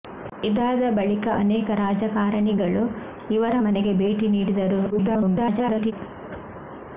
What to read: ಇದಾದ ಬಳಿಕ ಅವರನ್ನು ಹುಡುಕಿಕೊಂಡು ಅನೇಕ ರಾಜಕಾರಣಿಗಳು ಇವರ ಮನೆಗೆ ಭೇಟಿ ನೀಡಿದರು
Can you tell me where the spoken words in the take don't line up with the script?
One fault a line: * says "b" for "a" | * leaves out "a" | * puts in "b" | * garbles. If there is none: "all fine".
* leaves out "ಅವರನ್ನು ಹುಡುಕಿಕೊಂಡು"
* garbles